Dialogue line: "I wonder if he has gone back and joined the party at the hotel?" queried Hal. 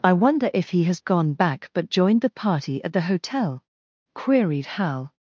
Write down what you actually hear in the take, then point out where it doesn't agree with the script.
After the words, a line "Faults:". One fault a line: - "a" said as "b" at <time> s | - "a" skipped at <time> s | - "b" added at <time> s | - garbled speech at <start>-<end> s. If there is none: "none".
"I wonder if he has gone back but joined the party at the hotel?" queried Hal.
Faults:
- "and" said as "but" at 1.7 s